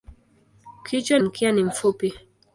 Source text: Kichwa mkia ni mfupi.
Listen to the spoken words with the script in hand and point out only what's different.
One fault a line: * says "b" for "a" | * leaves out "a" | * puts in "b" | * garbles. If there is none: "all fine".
all fine